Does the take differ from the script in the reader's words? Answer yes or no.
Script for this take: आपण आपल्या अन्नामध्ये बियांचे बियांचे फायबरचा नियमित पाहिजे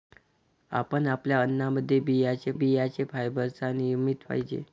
no